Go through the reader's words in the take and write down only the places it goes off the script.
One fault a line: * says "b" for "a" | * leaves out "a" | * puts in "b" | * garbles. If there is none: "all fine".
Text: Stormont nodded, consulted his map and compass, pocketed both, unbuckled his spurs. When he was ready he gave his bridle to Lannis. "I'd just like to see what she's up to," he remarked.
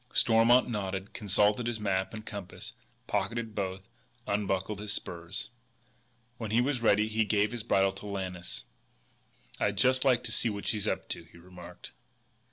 all fine